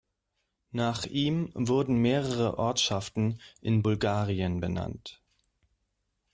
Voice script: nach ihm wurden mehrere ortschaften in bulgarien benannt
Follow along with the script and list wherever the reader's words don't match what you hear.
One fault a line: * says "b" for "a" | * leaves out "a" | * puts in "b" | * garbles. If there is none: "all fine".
all fine